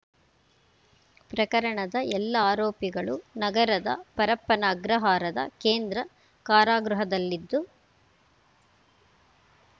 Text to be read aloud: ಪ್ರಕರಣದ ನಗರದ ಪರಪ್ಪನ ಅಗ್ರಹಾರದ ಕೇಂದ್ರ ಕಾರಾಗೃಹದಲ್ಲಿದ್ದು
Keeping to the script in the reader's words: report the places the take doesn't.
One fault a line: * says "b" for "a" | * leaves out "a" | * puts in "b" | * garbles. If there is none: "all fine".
* puts in "ಎಲ್ಲ ಆರೋಪಿಗಳು"